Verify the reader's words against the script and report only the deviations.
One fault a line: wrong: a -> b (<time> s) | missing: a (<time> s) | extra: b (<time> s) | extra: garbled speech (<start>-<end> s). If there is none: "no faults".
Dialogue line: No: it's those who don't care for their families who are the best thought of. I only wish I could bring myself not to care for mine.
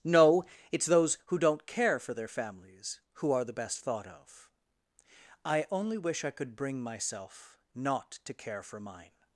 no faults